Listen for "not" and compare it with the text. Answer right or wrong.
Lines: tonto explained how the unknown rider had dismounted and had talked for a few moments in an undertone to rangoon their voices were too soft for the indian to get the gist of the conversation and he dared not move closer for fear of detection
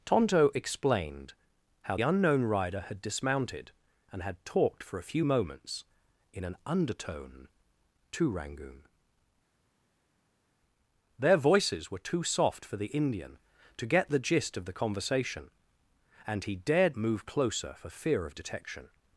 wrong